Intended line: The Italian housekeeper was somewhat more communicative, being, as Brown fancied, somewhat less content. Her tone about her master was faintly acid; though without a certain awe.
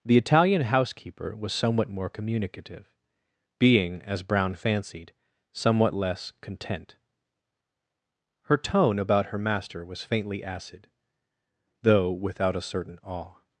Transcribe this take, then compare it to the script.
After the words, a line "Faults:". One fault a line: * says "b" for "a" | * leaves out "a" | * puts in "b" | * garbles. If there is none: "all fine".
The Italian housekeeper was somewhat more communicative, being, as Brown fancied, somewhat less content. Her tone about her master was faintly acid; though without a certain awe.
Faults:
all fine